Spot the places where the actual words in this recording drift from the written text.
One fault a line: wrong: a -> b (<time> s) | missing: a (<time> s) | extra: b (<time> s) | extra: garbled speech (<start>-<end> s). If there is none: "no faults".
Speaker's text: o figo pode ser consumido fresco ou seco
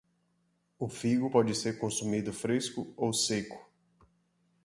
no faults